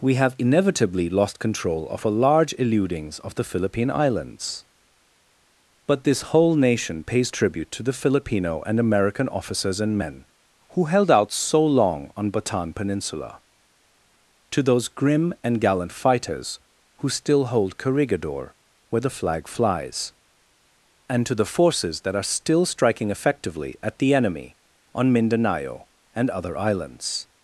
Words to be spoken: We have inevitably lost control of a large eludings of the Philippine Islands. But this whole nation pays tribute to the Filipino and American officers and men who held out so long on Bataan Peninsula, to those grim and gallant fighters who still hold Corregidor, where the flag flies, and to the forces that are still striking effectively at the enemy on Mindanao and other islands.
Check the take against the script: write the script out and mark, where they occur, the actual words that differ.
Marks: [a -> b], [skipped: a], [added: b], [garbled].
We have inevitably lost control of a large eludings of the Philippine Islands. But this whole nation pays tribute to the Filipino and American officers and men who held out so long on Bataan Peninsula, to those grim and gallant fighters who still hold Corregidor, where the flag flies, and to the forces that are still striking effectively at the enemy on Mindanao and other islands.